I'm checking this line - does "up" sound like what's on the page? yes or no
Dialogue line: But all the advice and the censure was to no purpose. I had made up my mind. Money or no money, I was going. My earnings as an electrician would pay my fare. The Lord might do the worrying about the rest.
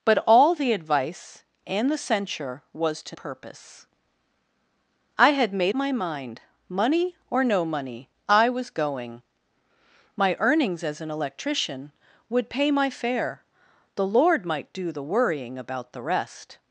no